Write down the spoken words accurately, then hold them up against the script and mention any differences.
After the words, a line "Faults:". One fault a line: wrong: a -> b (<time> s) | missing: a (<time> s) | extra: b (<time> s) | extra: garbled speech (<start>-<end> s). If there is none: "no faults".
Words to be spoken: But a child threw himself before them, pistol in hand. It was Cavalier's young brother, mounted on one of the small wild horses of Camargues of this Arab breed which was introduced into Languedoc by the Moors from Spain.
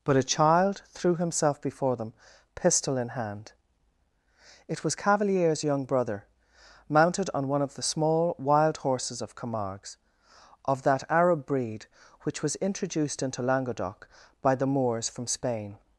But a child threw himself before them, pistol in hand. It was Cavalier's young brother, mounted on one of the small wild horses of Camargues of that Arab breed which was introduced into Languedoc by the Moors from Spain.
Faults:
wrong: this -> that (10.8 s)